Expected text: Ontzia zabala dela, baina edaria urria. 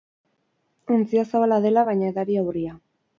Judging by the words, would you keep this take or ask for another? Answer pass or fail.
pass